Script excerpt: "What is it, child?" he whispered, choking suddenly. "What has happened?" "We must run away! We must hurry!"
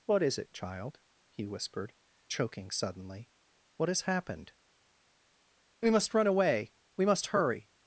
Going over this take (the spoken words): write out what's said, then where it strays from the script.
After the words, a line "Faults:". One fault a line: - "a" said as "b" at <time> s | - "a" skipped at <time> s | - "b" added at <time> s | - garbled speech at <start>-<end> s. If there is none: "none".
"What is it, child?" he whispered, choking suddenly. "What has happened?" "We must run away! We must hurry!"
Faults:
none